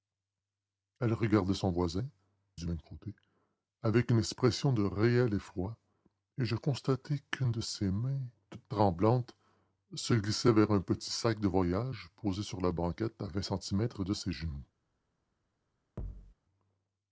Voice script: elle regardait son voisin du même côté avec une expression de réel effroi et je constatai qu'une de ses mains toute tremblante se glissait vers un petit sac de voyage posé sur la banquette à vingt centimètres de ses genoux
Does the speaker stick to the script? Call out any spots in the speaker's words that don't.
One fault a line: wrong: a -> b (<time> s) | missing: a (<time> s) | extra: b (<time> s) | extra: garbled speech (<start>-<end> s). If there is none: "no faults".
no faults